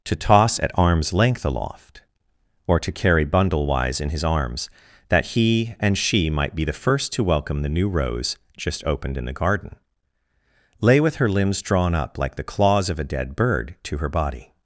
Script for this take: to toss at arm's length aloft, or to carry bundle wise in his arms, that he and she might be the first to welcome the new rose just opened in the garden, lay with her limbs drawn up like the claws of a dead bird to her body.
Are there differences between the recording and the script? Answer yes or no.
no